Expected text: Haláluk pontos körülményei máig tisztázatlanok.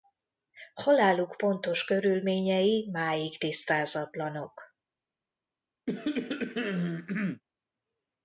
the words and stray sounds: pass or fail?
fail